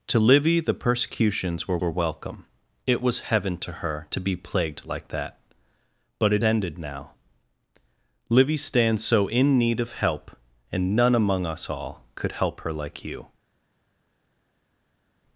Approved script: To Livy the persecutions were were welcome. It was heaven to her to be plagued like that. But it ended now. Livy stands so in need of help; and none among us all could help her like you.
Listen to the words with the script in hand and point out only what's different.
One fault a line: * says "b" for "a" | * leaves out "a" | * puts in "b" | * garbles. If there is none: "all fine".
all fine